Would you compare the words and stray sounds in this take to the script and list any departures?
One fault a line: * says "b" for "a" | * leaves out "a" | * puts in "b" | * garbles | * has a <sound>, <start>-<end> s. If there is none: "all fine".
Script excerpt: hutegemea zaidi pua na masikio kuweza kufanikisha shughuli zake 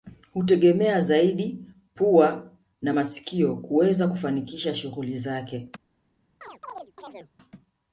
* has a chirp, 6.4-7.3 s